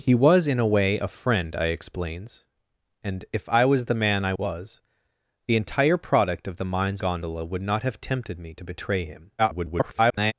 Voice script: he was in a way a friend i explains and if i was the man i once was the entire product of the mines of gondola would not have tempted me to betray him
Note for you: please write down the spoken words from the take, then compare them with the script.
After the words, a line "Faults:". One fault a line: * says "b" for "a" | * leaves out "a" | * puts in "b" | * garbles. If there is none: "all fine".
he was in a way a friend i explains and if i was the man i was the entire product of the mines gondola would not have tempted me to betray him [garbled]
Faults:
* leaves out "once"
* leaves out "of"
* garbles